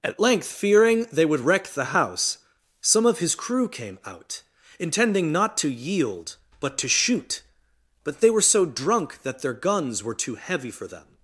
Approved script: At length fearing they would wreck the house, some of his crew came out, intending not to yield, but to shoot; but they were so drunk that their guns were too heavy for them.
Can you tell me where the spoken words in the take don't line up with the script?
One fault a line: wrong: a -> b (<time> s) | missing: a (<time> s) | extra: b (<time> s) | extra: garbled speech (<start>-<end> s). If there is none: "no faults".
no faults